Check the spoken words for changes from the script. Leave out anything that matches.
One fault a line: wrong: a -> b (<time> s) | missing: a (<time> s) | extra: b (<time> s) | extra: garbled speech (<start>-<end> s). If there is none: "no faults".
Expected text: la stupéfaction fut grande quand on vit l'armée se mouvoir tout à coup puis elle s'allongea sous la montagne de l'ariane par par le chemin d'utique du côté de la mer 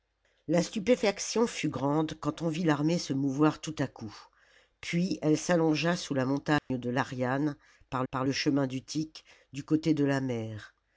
no faults